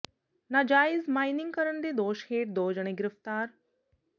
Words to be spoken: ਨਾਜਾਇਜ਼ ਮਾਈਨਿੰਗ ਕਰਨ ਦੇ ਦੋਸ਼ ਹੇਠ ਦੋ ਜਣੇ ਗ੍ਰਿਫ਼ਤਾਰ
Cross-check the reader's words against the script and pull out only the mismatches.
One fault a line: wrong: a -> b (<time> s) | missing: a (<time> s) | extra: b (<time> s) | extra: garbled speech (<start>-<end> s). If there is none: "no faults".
no faults